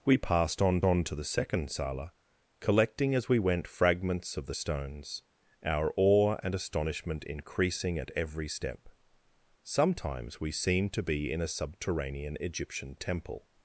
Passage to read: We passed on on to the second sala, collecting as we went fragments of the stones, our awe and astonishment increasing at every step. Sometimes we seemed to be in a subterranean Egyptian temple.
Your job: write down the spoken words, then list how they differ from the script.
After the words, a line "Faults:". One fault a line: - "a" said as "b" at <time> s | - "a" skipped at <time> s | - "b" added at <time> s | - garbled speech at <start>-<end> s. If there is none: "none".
We passed on on to the second sala, collecting as we went fragments of the stones, our awe and astonishment increasing at every step. Sometimes we seemed to be in a subterranean Egyptian temple.
Faults:
none